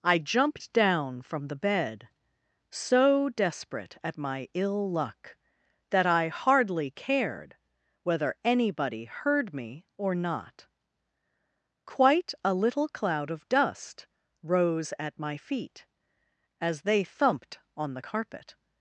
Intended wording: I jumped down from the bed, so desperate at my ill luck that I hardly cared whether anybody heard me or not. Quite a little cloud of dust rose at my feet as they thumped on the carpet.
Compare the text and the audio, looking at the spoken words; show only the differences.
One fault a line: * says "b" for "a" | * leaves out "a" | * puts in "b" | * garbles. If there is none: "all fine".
all fine